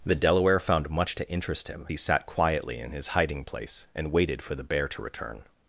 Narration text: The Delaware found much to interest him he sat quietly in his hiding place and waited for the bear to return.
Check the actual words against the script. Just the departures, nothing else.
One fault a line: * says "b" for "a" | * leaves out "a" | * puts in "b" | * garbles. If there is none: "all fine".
all fine